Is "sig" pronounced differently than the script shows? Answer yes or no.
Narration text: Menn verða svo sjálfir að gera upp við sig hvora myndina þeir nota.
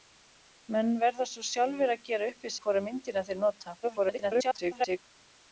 yes